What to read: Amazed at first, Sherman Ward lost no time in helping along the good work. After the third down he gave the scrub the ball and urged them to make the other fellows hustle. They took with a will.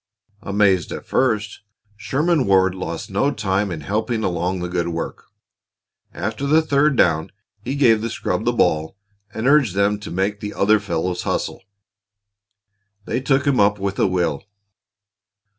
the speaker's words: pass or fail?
fail